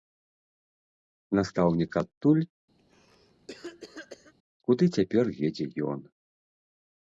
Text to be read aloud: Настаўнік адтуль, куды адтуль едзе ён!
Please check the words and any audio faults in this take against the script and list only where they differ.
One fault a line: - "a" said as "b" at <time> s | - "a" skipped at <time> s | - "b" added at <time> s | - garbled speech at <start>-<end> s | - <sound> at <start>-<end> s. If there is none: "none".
- cough at 2.8-4.3 s
- "адтуль" said as "цяпер" at 5.0 s